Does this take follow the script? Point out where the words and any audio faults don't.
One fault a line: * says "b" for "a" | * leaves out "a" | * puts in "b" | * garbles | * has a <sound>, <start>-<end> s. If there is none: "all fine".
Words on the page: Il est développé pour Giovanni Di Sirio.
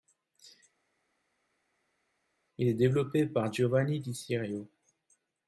* says "par" for "pour"